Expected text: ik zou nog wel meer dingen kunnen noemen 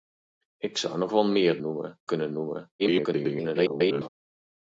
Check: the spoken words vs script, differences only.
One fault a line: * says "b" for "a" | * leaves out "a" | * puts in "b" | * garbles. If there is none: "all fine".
* says "noemen" for "dingen"
* garbles